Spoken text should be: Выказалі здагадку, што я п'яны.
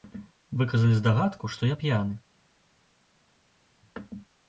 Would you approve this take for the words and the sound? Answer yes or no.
yes